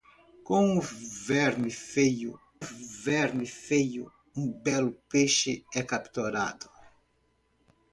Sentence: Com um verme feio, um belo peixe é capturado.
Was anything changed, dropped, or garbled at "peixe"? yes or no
no